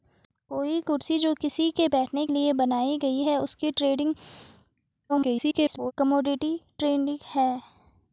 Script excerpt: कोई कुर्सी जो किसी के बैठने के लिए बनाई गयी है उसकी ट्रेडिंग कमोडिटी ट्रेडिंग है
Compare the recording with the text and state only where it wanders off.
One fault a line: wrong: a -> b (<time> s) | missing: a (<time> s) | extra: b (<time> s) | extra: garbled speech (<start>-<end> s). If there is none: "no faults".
missing: के (2.2 s)
extra: garbled speech (5.1-5.9 s)